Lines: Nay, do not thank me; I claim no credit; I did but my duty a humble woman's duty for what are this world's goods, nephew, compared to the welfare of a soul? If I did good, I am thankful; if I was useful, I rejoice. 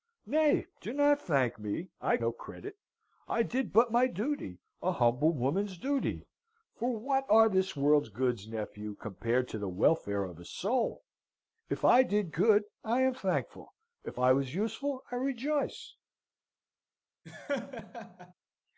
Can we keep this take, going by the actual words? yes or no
no